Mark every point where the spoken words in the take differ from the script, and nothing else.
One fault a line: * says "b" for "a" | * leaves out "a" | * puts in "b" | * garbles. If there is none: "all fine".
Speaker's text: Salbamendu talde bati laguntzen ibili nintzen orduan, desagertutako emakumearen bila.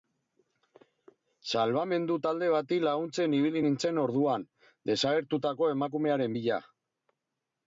all fine